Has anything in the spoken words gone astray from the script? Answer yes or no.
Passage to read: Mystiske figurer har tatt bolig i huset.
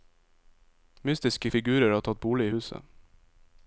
no